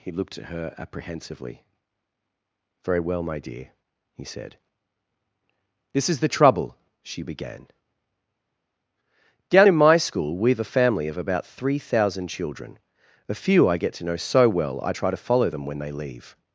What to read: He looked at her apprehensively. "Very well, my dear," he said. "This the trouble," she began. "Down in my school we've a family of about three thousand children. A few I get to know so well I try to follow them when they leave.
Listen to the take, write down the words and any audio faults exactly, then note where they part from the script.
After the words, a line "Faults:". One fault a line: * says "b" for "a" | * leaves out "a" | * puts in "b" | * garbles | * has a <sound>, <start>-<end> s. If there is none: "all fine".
He looked at her apprehensively. "Very well, my dear," he said. "This is the trouble," she began. "Down in my school we've a family of about three thousand children. A few I get to know so well I try to follow them when they leave.
Faults:
* puts in "is"